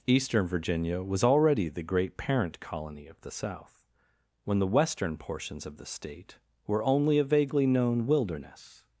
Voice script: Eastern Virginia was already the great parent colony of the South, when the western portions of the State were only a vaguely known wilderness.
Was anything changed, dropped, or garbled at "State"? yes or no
no